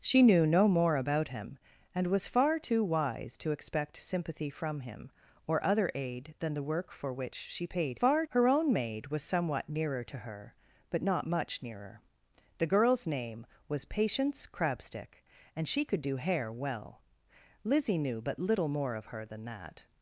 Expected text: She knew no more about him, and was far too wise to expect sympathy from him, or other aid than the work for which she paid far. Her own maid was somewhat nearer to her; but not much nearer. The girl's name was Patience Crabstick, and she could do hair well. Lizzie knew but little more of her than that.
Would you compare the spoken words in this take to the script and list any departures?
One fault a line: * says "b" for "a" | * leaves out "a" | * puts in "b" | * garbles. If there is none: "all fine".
all fine